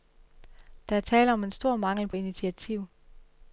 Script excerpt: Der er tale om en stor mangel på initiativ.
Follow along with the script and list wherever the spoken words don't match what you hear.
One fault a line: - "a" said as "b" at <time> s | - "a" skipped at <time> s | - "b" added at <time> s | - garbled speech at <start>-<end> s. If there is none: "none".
none